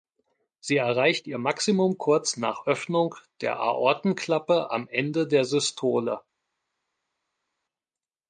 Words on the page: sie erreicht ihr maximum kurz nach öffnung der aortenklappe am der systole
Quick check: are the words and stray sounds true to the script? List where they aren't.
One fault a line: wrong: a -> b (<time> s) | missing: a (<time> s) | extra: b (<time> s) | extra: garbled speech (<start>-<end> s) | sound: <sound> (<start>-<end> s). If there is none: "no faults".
extra: ende (4.9 s)